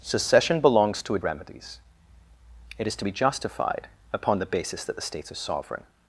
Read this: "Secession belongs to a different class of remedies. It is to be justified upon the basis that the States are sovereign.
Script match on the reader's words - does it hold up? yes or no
no